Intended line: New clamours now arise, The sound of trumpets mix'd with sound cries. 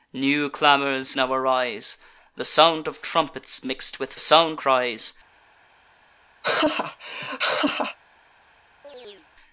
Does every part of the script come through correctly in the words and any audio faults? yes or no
no